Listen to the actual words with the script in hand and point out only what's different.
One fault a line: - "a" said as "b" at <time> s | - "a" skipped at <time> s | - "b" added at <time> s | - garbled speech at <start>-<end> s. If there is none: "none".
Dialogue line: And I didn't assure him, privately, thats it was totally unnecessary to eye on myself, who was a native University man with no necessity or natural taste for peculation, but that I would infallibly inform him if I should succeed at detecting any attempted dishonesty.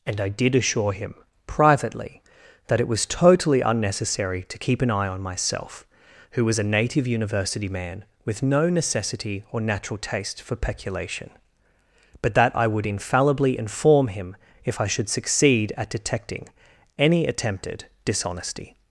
- "didn't" said as "did" at 0.3 s
- "thats" said as "that" at 2.7 s
- "keep an" added at 4.6 s